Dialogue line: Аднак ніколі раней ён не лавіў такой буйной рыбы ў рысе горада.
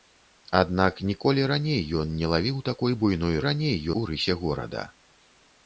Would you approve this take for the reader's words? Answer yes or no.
no